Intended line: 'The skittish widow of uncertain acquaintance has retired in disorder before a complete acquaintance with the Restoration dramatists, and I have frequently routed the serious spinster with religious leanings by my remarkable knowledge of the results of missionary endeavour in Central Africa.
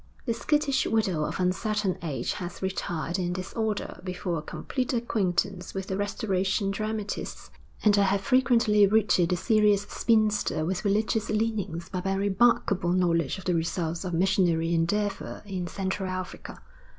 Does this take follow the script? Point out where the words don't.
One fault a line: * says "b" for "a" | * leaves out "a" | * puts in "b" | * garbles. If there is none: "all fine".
* says "age" for "acquaintance"